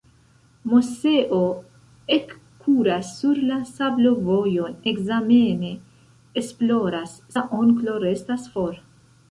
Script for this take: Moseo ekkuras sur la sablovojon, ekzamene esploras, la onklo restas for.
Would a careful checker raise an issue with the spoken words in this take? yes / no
no